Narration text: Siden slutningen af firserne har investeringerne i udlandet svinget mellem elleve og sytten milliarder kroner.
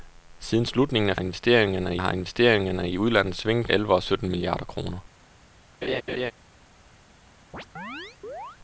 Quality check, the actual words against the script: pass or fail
fail